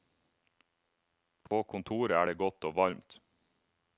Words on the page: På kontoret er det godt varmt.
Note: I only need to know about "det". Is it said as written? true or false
true